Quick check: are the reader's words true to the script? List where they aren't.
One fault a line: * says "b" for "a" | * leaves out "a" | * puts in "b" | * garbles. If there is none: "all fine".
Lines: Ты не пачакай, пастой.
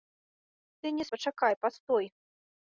all fine